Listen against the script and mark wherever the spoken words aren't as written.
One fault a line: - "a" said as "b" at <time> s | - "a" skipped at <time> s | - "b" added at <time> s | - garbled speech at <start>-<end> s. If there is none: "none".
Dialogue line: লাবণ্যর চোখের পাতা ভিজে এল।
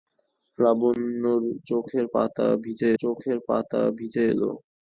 - "চোখের পাতা ভিজে" added at 3.0 s